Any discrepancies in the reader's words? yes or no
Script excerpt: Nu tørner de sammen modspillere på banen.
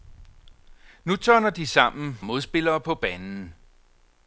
no